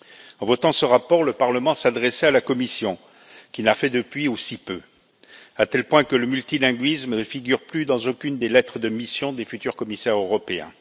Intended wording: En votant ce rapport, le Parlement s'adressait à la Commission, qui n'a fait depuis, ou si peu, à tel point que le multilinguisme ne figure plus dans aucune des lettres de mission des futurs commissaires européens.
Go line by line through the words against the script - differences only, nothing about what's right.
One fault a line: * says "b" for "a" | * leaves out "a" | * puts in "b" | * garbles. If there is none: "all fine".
all fine